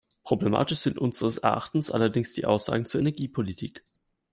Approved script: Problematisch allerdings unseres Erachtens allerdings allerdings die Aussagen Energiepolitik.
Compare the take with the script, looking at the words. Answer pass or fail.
fail